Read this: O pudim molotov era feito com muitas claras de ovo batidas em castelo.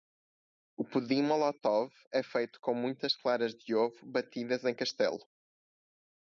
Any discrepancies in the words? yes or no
yes